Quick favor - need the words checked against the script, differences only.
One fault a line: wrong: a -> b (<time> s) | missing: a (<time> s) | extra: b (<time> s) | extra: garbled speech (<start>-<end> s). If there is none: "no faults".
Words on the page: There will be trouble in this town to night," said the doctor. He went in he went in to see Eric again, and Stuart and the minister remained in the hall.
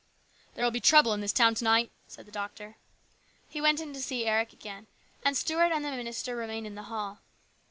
missing: he went in (3.9 s)